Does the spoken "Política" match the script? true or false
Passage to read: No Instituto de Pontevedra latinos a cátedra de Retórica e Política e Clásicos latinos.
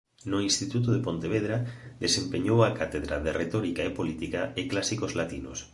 true